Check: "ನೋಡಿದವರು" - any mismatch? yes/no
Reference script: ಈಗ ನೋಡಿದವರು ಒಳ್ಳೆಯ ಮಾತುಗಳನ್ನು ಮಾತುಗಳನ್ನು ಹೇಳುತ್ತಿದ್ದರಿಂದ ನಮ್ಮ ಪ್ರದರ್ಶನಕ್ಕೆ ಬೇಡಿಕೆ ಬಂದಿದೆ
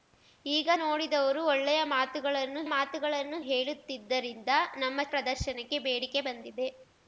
no